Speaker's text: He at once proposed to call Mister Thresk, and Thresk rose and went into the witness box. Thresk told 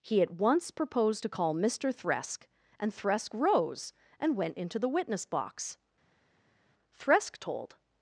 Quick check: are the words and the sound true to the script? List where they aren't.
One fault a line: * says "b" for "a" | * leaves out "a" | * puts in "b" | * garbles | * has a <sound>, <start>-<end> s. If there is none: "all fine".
all fine